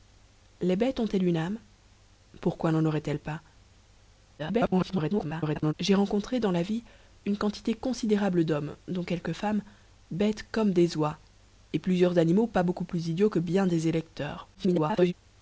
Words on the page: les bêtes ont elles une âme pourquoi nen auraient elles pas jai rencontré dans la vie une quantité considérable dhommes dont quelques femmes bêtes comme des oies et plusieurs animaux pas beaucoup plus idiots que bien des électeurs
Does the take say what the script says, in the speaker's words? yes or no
no